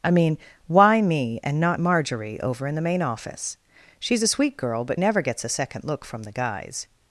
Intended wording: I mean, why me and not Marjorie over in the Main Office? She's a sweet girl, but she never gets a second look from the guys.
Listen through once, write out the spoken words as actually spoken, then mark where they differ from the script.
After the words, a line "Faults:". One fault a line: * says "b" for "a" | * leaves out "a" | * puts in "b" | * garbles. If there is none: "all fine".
I mean, why me and not Marjorie over in the Main Office? She's a sweet girl, but never gets a second look from the guys.
Faults:
* leaves out "she"